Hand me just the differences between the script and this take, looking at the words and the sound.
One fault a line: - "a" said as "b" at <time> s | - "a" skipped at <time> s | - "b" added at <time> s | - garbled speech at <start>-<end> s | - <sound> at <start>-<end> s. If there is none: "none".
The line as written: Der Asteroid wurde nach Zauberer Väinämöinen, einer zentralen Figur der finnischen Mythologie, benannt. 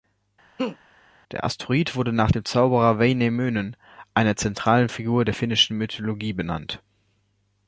- laugh at 0.6-0.8 s
- "dem" added at 2.3 s